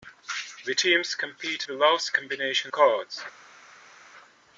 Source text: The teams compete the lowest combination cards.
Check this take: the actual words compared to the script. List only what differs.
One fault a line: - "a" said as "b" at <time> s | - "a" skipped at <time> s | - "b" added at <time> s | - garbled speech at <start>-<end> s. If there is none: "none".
none